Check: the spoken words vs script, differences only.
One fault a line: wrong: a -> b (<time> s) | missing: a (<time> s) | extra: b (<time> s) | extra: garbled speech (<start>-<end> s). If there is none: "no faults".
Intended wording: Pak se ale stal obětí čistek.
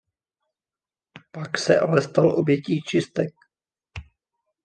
no faults